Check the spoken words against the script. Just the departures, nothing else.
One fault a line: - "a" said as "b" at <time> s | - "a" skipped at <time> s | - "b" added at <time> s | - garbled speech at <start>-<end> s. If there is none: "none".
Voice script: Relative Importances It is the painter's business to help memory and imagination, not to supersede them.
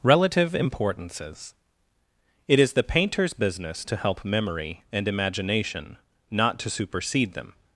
none